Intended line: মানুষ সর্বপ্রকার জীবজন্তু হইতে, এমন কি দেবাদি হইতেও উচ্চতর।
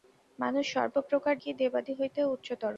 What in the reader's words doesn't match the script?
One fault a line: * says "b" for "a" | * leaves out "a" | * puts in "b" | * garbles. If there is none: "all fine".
* leaves out "জীবজন্তু হইতে এমন"